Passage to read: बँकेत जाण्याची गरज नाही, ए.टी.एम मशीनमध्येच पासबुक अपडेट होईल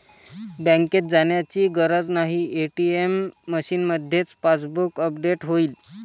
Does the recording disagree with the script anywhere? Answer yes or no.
no